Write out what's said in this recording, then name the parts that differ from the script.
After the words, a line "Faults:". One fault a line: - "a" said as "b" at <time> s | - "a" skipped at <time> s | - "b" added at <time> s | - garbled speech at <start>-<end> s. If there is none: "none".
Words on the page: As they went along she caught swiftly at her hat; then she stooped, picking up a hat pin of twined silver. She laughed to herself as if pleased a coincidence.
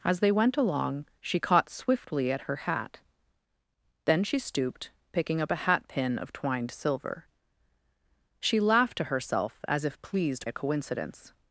As they went along she caught swiftly at her hat; then she stooped, picking up a hat pin of twined silver. She laughed to herself as if pleased a coincidence.
Faults:
none